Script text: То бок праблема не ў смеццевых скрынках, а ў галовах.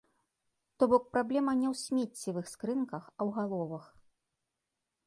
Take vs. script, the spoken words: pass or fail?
pass